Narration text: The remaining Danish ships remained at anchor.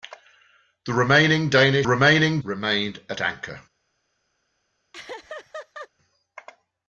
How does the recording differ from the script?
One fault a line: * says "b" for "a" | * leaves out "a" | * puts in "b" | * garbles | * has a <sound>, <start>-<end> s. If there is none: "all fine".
* says "remaining" for "ships"
* has a laugh, 4.9-5.9 s